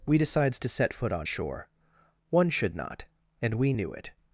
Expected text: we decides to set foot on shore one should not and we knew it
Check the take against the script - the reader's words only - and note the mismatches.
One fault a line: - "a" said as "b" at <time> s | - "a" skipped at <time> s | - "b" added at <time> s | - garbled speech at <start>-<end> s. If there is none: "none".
none